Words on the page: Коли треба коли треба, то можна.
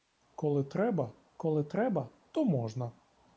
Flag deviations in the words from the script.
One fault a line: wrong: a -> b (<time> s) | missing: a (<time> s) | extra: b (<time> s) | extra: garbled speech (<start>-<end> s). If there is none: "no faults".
no faults